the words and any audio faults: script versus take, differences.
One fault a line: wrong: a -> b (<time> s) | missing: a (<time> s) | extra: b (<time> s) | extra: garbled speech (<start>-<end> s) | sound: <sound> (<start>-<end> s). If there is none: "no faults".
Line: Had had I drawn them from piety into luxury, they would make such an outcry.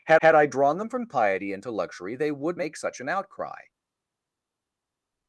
no faults